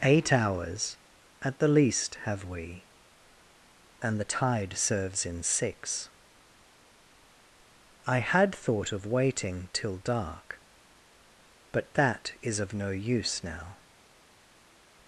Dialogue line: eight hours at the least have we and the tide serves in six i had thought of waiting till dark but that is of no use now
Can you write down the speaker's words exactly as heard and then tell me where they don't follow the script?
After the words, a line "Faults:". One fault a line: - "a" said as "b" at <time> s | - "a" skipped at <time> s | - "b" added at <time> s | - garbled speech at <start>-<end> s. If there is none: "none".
eight hours at the least have we and the tide serves in six i had thought of waiting till dark but that is of no use now
Faults:
none